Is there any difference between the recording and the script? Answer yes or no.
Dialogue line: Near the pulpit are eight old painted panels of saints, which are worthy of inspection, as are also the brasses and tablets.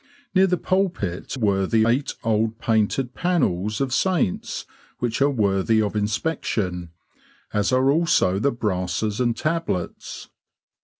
yes